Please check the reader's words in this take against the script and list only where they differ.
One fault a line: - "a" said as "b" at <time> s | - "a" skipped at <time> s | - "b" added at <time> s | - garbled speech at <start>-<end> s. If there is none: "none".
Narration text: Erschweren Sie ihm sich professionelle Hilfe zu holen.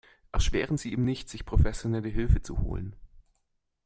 - "nicht" added at 1.0 s